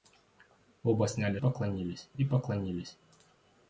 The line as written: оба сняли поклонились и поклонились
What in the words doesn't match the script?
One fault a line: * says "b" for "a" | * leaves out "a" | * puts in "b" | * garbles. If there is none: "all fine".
all fine